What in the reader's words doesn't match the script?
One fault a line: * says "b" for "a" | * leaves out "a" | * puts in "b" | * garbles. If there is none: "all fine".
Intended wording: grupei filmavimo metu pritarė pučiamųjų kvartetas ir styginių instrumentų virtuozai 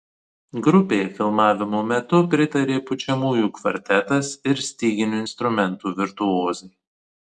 all fine